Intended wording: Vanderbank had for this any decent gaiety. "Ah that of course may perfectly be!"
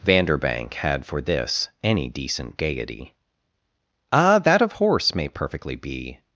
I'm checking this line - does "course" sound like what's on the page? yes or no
no